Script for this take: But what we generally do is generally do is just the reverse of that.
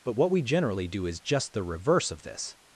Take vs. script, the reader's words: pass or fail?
fail